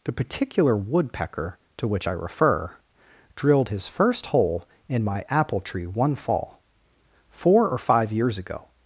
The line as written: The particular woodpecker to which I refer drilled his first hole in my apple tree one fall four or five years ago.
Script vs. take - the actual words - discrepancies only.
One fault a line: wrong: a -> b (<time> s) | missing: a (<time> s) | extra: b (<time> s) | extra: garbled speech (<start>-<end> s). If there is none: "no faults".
no faults